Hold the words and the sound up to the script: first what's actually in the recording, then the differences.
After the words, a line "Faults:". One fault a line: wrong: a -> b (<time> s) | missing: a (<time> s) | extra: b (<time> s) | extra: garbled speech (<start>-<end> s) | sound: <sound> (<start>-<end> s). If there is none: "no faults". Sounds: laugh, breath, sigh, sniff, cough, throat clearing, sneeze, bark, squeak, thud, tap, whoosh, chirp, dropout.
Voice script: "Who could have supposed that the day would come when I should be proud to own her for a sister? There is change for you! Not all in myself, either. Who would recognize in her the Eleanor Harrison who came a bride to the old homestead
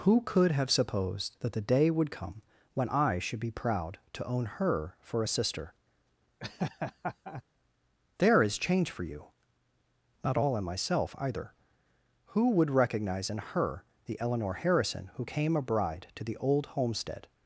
"Who could have supposed that the day would come when I should be proud to own her for a sister? There is change for you! Not all in myself, either. Who would recognize in her the Eleanor Harrison who came a bride to the old homestead
Faults:
sound: laugh (6.4-7.4 s)